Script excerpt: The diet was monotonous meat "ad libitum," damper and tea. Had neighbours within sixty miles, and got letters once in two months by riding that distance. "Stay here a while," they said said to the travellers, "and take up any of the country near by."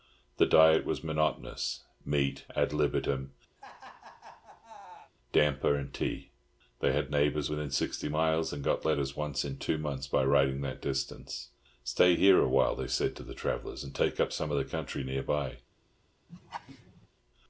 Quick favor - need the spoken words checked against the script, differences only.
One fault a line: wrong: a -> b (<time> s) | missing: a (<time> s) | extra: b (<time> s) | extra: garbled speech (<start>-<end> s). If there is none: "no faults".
extra: They (6.8 s)
missing: said (13.1 s)
wrong: any -> some (14.3 s)